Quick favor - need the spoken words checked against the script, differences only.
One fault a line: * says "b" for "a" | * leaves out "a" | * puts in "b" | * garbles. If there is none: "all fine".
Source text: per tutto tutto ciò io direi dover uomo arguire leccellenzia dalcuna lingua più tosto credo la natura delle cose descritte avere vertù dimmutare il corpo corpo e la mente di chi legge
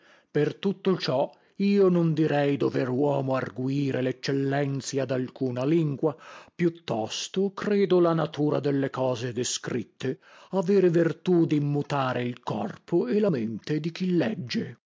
* leaves out "tutto"
* puts in "non"
* leaves out "corpo"